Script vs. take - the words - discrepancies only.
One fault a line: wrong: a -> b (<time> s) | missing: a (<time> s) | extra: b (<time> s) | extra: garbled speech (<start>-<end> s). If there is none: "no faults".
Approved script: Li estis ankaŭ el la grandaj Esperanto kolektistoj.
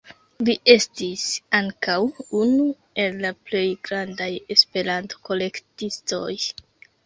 extra: unu (2.4 s)
extra: plej (3.5 s)